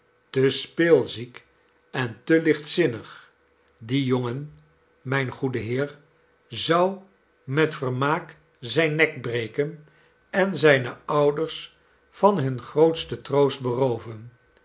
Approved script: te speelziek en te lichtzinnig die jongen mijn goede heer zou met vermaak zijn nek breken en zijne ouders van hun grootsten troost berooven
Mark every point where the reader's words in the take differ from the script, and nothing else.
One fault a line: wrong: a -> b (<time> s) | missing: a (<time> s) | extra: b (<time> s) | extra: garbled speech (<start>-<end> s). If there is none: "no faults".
no faults